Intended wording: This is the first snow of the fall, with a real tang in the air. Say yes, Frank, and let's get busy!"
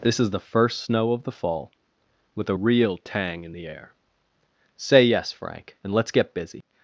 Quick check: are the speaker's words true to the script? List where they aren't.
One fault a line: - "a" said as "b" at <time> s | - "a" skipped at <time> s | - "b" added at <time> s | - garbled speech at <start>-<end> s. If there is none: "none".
none